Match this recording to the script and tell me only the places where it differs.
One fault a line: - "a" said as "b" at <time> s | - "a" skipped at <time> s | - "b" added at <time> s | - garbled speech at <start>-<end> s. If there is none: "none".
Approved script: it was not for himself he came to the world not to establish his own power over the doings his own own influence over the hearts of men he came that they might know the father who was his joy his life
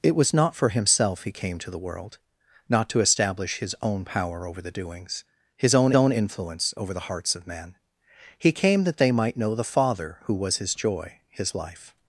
none